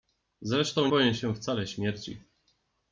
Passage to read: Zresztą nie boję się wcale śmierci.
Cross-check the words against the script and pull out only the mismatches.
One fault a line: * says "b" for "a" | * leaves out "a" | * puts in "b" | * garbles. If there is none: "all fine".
* leaves out "nie"